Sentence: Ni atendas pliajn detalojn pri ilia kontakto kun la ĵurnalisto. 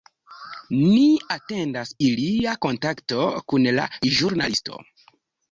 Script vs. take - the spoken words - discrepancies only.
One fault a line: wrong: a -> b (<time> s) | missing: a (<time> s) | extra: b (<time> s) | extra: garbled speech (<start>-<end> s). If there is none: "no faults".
missing: pliajn detalojn pri (1.9 s)